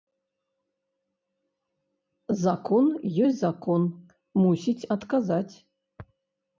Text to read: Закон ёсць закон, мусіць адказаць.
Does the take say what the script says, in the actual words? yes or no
yes